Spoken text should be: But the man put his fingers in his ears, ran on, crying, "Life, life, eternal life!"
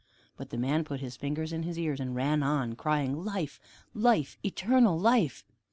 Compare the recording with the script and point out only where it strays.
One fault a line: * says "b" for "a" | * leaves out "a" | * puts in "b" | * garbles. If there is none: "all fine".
* puts in "and"